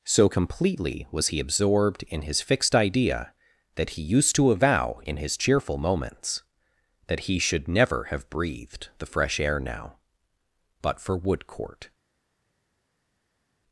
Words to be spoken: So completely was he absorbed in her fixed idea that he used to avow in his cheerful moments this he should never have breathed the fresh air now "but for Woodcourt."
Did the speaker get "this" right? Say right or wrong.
wrong